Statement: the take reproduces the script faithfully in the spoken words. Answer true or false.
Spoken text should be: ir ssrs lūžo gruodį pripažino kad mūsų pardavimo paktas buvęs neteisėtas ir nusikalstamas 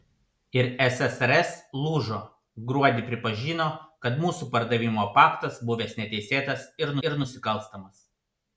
false